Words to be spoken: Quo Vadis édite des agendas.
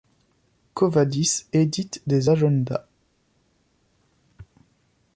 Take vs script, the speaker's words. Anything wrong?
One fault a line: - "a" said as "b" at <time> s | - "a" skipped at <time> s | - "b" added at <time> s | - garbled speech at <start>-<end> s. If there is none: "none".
none